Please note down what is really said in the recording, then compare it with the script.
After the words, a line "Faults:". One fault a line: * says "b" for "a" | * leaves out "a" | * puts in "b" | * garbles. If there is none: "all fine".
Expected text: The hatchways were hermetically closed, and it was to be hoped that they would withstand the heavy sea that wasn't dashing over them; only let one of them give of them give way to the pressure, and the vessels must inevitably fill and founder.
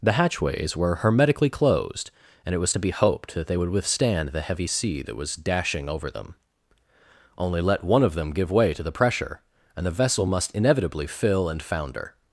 The hatchways were hermetically closed, and it was to be hoped that they would withstand the heavy sea that was dashing over them; only let one of them give way to the pressure, and the vessel must inevitably fill and founder.
Faults:
* says "was" for "wasn't"
* leaves out "of them give"
* says "vessel" for "vessels"